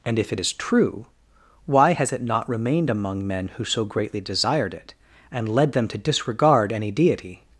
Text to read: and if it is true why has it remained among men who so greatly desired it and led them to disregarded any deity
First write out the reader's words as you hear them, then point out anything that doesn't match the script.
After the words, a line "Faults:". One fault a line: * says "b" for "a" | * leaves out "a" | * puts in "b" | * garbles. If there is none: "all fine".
and if it is true why has it not remained among men who so greatly desired it and led them to disregard any deity
Faults:
* puts in "not"
* says "disregard" for "disregarded"